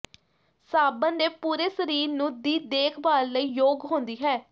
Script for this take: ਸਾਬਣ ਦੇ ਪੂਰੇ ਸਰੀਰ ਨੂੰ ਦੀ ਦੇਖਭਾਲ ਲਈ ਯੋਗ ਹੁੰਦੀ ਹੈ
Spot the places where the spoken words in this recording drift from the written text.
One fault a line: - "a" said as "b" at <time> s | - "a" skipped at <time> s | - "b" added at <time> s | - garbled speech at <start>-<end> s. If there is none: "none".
none